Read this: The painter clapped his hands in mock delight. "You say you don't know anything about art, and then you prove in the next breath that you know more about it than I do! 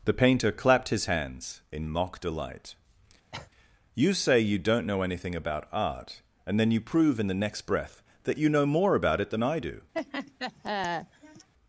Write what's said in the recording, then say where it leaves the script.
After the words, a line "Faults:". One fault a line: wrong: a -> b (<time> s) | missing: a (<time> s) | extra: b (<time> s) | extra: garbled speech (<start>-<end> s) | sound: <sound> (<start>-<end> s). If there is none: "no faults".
The painter clapped his hands in mock delight. "You say you don't know anything about art, and then you prove in the next breath that you know more about it than I do!
Faults:
sound: cough (3.3-3.5 s)
sound: laugh (9.9-11.5 s)